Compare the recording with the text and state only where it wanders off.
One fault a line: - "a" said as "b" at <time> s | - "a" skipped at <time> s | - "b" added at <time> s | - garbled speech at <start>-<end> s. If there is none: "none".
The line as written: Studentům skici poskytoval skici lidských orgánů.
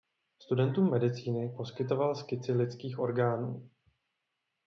- "skici" said as "medicíny" at 0.9 s